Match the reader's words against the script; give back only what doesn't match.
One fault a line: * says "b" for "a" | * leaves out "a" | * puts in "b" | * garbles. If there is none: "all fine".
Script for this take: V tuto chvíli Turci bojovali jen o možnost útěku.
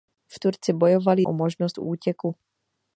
* leaves out "tuto chvíli"
* leaves out "jen"